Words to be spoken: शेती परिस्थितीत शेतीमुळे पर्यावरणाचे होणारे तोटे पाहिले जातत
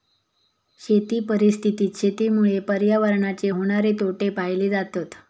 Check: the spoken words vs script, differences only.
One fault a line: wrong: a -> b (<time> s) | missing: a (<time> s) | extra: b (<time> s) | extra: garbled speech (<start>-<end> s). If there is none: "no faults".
no faults